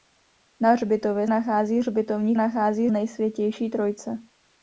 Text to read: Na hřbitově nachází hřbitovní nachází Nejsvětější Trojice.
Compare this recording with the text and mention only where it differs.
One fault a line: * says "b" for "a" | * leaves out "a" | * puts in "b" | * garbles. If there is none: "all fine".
all fine